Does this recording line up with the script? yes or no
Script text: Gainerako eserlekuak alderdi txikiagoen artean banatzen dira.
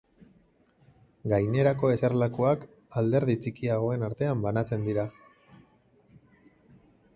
yes